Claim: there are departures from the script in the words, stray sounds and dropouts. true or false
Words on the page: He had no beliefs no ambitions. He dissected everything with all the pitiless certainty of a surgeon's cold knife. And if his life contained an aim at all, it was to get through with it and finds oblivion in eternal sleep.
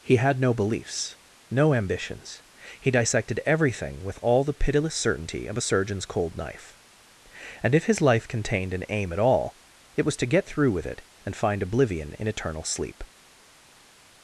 true